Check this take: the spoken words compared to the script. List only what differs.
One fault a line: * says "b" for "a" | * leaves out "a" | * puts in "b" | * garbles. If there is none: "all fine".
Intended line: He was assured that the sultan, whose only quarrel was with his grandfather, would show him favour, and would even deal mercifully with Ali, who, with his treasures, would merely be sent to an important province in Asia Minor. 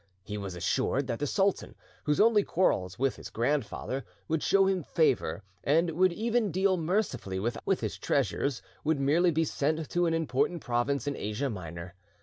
* leaves out "Ali who"